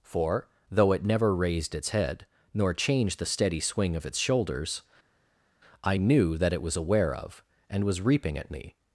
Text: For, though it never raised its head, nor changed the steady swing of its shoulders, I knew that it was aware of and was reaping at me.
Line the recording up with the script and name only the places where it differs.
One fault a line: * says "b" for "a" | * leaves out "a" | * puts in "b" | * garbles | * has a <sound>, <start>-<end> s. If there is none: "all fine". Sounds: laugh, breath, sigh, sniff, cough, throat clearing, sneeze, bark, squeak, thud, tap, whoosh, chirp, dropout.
all fine